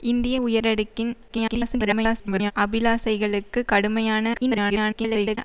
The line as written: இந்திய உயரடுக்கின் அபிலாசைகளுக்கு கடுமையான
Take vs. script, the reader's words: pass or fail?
fail